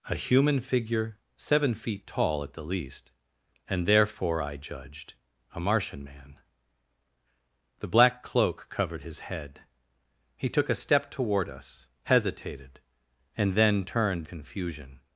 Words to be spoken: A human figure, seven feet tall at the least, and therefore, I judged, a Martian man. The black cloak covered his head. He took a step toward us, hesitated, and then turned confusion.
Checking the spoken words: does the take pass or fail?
pass